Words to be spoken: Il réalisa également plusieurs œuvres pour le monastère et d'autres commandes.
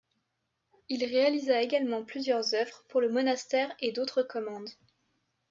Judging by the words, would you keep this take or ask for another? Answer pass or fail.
pass